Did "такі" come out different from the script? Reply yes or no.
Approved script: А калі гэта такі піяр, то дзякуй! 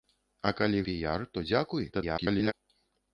yes